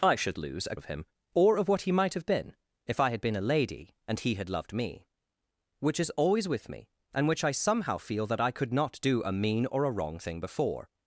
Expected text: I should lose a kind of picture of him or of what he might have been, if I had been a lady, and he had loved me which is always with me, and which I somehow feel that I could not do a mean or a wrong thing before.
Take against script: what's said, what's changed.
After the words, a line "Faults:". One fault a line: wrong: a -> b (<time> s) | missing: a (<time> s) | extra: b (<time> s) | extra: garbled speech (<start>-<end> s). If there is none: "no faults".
I should lose a of him or of what he might have been, if I had been a lady, and he had loved me which is always with me, and which I somehow feel that I could not do a mean or a wrong thing before.
Faults:
missing: kind of picture (0.8 s)